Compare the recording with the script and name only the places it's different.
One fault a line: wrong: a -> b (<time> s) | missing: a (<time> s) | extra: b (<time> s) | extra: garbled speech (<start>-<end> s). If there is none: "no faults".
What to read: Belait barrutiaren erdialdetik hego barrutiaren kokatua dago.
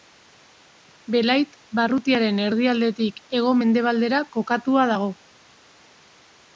wrong: barrutiaren -> mendebaldera (3.6 s)